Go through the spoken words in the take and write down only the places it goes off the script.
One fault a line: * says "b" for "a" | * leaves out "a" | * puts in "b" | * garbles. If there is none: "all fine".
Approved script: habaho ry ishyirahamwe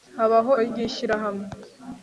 all fine